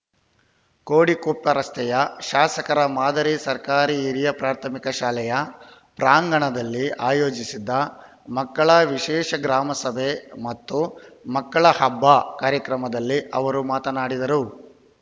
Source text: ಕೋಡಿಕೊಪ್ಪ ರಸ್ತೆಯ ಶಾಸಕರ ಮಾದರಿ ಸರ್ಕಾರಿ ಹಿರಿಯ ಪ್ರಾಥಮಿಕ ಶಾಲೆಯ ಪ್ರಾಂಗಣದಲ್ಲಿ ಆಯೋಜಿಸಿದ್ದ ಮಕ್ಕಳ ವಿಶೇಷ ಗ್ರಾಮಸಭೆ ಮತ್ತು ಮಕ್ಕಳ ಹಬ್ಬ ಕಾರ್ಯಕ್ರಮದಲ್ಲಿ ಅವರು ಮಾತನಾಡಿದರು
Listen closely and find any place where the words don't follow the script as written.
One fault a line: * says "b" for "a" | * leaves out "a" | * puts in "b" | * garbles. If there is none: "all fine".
all fine